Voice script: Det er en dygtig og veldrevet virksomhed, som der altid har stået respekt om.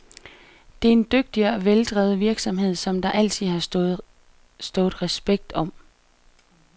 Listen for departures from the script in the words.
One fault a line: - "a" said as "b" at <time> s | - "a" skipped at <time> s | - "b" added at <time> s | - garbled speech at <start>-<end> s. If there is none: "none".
none